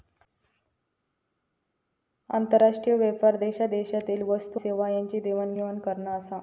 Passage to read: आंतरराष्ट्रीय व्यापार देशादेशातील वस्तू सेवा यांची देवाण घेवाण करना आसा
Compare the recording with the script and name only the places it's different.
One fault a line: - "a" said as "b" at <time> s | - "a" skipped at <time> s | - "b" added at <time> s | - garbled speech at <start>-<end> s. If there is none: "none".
none